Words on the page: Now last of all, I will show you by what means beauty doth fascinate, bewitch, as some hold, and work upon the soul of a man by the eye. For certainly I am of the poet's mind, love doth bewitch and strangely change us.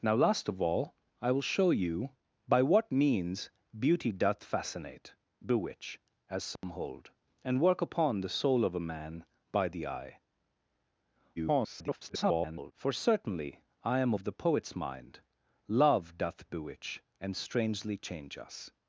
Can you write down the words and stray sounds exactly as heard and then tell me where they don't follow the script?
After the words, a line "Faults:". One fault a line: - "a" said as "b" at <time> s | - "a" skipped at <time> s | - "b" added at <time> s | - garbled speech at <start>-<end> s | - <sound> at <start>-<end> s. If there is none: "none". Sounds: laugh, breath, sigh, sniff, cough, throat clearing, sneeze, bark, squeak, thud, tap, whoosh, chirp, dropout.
Now last of all, I will show you by what means beauty doth fascinate, bewitch, as some hold, and work upon the soul of a man by the eye. [garbled] For certainly I am of the poet's mind, love doth bewitch and strangely change us.
Faults:
- dropout at 6.6-6.6 s
- garbled speech at 11.4-12.7 s